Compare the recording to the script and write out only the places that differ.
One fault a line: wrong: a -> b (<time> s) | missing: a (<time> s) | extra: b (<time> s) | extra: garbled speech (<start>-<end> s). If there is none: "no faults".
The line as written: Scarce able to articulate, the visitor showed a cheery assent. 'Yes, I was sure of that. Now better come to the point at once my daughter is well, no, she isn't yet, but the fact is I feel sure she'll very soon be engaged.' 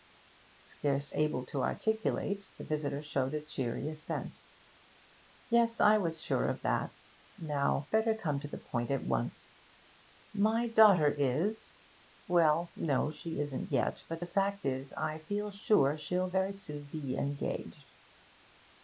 no faults